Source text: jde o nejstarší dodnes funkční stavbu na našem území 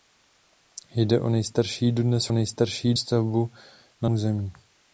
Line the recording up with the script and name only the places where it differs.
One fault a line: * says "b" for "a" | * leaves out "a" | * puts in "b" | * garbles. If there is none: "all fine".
* says "nejstarší" for "funkční"
* leaves out "našem"